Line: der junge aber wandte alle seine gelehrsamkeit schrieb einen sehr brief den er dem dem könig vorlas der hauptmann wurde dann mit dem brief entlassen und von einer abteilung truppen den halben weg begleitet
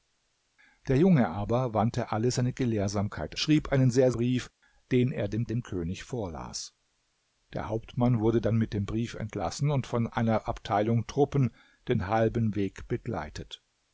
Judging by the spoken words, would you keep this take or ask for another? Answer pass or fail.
pass